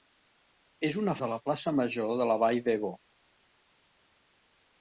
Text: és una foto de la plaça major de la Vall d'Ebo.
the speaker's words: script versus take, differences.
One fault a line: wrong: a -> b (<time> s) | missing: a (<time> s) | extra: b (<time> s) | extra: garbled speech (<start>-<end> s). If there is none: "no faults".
missing: foto (1.1 s)